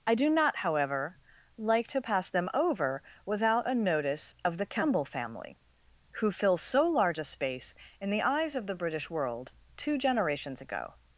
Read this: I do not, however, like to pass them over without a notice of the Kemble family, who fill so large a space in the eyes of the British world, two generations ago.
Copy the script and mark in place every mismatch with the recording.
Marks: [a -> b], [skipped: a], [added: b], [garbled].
I do not, however, like to pass them over without a notice of the Kemble family, who fill so large a space in the eyes of the British world, two generations ago.